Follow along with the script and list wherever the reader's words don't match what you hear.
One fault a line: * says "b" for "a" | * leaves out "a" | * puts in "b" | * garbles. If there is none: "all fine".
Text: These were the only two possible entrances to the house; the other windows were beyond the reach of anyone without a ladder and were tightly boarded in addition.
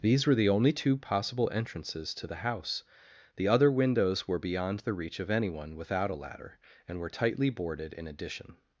all fine